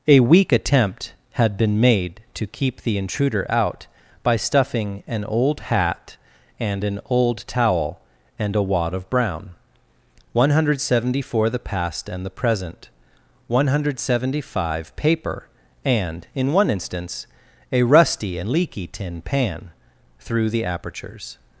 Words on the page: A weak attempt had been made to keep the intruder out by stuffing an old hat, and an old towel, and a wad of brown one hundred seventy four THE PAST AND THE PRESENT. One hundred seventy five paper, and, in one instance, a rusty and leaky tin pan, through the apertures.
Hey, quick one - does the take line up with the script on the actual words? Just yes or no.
yes